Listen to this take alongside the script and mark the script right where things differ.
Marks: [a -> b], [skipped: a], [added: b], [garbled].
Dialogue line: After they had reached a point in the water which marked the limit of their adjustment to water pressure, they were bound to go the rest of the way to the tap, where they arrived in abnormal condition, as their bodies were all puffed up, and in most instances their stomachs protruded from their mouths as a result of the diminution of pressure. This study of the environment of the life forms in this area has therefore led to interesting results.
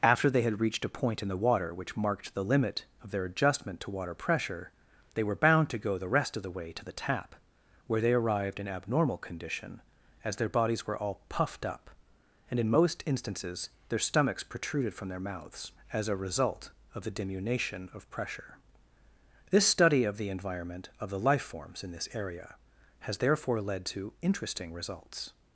After they had reached a point in the water which marked the limit of their adjustment to water pressure, they were bound to go the rest of the way to the tap, where they arrived in abnormal condition, as their bodies were all puffed up, and in most instances their stomachs protruded from their mouths as a result of the diminution of pressure. This study of the environment of the life forms in this area has therefore led to interesting results.